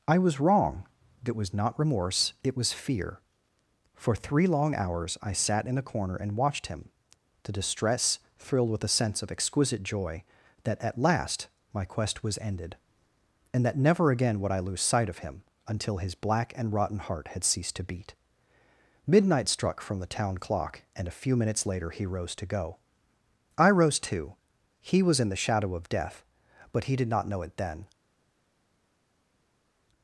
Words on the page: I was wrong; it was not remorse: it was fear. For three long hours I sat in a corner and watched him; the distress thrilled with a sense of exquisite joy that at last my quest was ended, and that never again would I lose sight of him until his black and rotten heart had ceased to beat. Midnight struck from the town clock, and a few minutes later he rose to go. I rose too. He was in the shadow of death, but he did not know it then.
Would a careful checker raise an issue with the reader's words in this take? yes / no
no